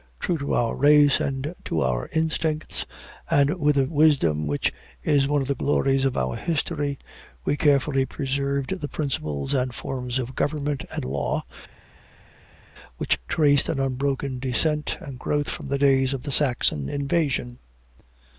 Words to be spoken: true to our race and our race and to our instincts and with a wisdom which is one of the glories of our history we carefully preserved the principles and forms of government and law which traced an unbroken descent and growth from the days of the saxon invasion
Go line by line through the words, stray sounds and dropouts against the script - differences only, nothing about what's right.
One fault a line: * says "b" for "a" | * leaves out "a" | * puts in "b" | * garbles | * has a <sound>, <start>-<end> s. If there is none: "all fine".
* leaves out "our race and"